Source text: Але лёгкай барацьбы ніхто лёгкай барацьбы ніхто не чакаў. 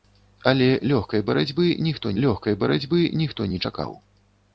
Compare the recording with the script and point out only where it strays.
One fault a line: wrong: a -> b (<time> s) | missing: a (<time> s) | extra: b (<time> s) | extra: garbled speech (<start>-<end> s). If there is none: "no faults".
no faults